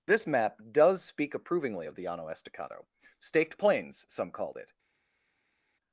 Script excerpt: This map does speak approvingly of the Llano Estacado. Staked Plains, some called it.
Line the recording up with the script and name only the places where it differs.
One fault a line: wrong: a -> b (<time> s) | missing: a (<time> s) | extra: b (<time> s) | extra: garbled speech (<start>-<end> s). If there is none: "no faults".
no faults